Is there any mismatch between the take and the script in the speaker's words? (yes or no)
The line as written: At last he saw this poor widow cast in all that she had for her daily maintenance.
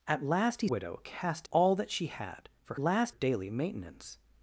yes